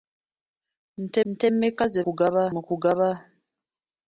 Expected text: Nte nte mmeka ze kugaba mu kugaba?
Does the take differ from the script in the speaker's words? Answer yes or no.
no